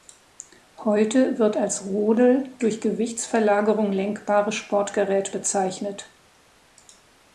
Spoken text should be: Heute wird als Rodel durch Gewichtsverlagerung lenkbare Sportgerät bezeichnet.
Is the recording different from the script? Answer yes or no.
no